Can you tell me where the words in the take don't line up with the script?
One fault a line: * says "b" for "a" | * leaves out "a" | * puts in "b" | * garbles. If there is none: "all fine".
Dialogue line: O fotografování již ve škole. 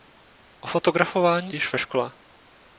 all fine